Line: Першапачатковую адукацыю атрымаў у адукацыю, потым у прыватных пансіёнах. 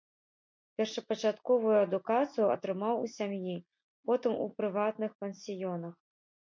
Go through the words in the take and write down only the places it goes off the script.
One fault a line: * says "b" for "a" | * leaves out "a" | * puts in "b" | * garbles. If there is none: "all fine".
* says "сям'і" for "адукацыю"